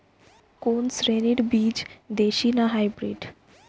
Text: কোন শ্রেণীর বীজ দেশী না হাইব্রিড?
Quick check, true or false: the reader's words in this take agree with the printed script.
true